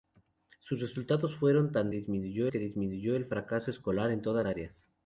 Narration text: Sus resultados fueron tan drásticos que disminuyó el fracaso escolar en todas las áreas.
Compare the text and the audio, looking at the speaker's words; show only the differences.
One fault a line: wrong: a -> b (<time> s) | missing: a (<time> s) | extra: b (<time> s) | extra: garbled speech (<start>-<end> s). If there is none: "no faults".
wrong: drásticos -> disminuyó (1.9 s)
missing: las (4.4 s)